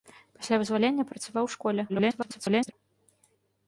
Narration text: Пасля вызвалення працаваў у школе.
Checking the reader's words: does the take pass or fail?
fail